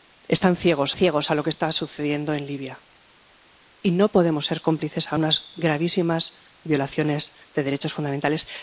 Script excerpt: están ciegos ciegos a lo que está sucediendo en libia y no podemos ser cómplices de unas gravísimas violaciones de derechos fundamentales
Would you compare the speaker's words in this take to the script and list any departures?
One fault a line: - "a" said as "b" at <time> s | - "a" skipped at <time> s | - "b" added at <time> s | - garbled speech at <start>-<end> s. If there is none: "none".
none